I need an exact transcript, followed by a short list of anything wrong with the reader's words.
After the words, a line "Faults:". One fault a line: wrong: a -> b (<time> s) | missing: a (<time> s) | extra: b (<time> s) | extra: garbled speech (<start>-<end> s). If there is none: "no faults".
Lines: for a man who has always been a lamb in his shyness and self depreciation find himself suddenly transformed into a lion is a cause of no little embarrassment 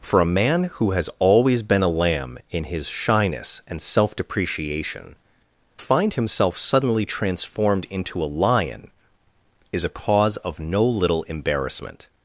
for a man who has always been a lamb in his shyness and self depreciation find himself suddenly transformed into a lion is a cause of no little embarrassment
Faults:
no faults